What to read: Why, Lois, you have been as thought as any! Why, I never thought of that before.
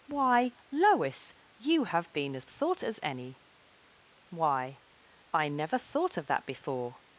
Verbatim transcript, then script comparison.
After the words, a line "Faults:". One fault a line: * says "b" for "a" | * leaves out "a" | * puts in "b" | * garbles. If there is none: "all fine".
Why, Lois, you have been as thought as any! Why, I never thought of that before.
Faults:
all fine